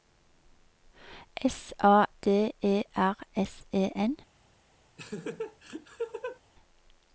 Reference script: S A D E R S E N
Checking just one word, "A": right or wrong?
right